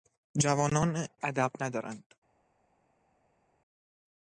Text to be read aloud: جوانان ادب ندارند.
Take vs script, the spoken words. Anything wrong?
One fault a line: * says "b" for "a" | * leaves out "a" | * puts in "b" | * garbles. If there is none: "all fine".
all fine